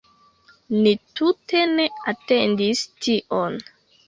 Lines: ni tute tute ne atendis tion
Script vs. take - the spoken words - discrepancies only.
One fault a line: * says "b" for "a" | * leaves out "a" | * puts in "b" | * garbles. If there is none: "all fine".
* leaves out "tute"